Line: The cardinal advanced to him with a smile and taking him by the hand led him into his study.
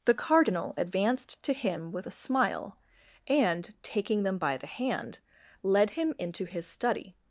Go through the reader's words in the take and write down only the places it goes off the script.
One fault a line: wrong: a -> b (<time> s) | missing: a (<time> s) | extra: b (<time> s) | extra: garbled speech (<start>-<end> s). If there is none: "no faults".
wrong: him -> them (4.2 s)